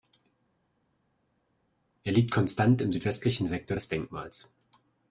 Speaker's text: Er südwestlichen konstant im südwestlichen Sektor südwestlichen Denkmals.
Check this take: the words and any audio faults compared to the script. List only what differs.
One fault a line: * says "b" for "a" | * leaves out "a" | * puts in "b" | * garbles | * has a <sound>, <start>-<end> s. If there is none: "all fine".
* says "liegt" for "südwestlichen"
* says "des" for "südwestlichen"